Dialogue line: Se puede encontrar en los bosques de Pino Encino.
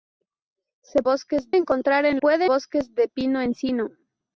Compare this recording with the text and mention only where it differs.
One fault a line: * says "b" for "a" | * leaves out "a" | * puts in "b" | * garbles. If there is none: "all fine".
* says "bosques" for "puede"
* says "puede" for "los"